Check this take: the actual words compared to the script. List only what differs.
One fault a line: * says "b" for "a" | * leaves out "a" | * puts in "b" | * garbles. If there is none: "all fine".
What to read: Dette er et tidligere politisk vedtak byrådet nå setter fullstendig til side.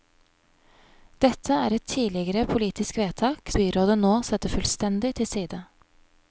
all fine